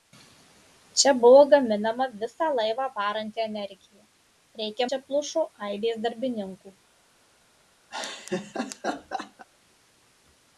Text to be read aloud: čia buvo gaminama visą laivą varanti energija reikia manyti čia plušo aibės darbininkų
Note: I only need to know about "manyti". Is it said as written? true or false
false